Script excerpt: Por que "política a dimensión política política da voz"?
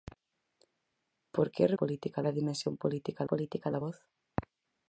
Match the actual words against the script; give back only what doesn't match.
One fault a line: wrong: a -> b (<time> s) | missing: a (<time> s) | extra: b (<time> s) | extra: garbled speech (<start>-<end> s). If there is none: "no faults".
no faults